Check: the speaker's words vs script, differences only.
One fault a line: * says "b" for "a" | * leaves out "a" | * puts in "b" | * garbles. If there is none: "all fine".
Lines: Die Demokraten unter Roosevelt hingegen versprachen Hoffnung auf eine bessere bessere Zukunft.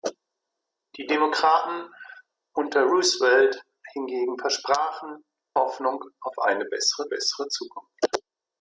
all fine